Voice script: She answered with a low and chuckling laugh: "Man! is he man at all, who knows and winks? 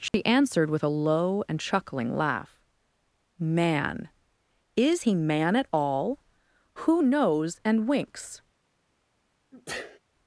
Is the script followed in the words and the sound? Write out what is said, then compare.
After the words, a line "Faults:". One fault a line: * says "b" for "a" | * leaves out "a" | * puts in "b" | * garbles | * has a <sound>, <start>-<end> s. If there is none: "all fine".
She answered with a low and chuckling laugh: "Man! is he man at all, who knows and winks?
Faults:
* has a dropout, 0.1-0.1 s
* has a sneeze, 9.5-10.0 s